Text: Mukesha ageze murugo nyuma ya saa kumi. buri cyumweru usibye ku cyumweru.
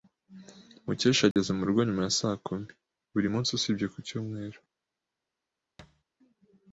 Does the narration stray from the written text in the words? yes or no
yes